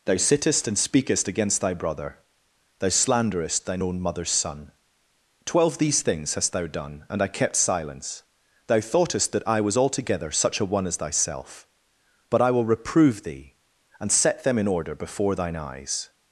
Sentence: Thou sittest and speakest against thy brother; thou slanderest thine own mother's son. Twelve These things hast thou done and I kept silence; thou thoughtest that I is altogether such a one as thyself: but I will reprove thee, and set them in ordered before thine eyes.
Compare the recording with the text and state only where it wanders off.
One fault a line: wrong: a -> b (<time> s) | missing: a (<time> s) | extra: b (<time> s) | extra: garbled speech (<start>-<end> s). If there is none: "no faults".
wrong: is -> was (9.6 s)
wrong: ordered -> order (14.7 s)